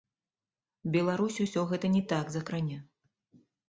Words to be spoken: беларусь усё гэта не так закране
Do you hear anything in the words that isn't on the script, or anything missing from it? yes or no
no